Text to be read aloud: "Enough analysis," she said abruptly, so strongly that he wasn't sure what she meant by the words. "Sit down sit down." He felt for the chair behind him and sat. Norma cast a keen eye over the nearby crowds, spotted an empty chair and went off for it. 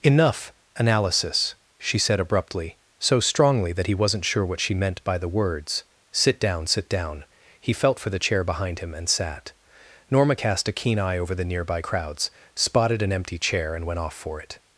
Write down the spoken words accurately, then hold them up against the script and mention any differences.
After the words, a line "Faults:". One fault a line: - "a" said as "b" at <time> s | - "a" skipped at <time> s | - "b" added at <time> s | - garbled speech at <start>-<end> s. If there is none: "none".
"Enough analysis," she said abruptly, so strongly that he wasn't sure what she meant by the words. "Sit down sit down." He felt for the chair behind him and sat. Norma cast a keen eye over the nearby crowds, spotted an empty chair and went off for it.
Faults:
none